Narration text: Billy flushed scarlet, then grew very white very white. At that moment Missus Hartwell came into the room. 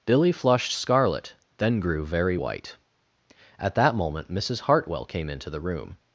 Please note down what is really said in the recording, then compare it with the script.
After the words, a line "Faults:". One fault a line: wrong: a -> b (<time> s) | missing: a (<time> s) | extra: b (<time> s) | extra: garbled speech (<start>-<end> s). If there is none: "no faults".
Billy flushed scarlet, then grew very white. At that moment Missus Hartwell came into the room.
Faults:
missing: very white (2.8 s)